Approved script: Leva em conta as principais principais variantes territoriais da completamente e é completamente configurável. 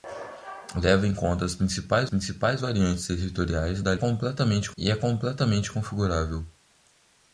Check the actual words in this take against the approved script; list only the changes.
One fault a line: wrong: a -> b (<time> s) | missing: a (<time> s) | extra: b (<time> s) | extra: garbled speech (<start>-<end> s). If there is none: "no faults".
no faults